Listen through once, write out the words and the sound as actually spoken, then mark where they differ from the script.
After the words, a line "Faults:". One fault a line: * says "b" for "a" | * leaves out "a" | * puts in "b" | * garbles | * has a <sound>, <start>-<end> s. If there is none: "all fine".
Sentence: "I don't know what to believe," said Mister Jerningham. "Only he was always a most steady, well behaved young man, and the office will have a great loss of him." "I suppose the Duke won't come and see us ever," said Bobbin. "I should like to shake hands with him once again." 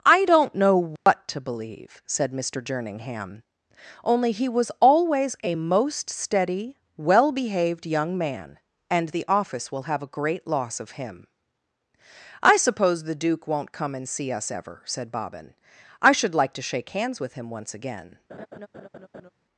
"I don't know what to believe," said Mister Jerningham. "Only he was always a most steady, well behaved young man, and the office will have a great loss of him." "I suppose the Duke won't come and see us ever," said Bobbin. "I should like to shake hands with him once again."
Faults:
* has a dropout, 1.0-1.1 s
* has a laugh, 18.3-19.3 s